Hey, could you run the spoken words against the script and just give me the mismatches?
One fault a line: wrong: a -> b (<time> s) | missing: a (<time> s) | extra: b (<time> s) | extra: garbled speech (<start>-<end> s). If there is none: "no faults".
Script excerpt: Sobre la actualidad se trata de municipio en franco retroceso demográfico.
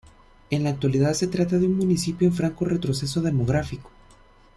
wrong: Sobre -> En (0.5 s)
extra: un (1.7 s)